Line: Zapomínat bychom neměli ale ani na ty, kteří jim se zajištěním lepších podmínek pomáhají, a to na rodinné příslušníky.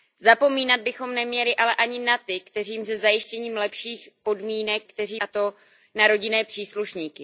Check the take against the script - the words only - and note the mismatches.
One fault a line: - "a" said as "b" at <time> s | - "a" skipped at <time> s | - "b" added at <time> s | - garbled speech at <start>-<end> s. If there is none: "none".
- "pomáhají" said as "kteří" at 4.8 s